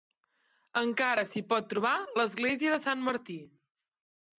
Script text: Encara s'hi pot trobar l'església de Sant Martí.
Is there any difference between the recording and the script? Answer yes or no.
no